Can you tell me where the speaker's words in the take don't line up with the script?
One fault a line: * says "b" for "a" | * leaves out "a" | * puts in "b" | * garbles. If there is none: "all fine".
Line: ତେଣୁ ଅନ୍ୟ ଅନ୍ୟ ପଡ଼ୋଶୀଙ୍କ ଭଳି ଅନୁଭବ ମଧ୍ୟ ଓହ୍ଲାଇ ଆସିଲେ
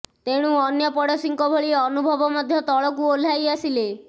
* leaves out "ଅନ୍ୟ"
* puts in "ତଳକୁ"